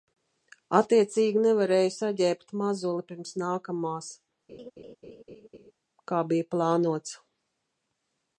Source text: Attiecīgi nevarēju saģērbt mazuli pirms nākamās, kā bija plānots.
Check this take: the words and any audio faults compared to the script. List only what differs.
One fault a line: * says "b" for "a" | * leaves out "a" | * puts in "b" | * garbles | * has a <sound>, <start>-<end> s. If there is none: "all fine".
* has a laugh, 4.5-5.7 s